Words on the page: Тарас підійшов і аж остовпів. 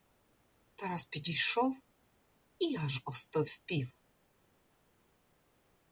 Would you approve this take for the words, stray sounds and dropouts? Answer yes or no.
yes